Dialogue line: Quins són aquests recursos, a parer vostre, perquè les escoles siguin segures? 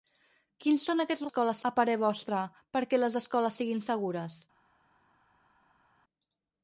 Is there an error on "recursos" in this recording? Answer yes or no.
yes